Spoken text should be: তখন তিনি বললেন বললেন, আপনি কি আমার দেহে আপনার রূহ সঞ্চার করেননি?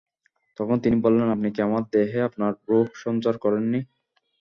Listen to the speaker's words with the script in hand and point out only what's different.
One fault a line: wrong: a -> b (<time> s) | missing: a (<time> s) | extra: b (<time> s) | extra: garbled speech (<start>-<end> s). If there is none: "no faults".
missing: বললেন (1.3 s)